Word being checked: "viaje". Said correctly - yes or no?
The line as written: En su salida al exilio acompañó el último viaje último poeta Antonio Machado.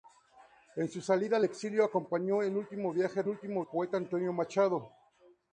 yes